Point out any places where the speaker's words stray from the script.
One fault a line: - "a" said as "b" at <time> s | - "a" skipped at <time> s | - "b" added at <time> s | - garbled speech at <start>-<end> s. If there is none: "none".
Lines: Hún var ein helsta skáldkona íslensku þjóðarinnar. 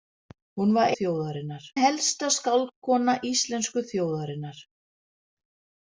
- "ein" said as "þjóðarinnar" at 1.0 s